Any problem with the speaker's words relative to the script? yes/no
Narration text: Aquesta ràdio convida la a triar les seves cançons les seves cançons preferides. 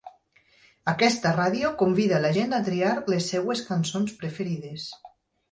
yes